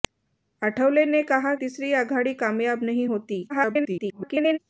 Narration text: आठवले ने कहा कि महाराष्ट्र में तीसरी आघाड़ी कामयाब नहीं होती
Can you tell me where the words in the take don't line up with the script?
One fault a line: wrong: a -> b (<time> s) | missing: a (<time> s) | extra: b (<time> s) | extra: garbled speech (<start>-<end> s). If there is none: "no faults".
missing: कि महाराष्ट्र में (1.5 s)
extra: garbled speech (3.5-4.6 s)